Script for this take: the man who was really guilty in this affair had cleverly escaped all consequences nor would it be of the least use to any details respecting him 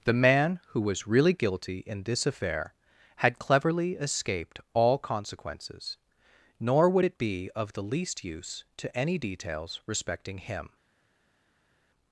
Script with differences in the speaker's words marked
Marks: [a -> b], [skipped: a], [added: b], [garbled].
the man who was really guilty in this affair had cleverly escaped all consequences nor would it be of the least use to any details respecting him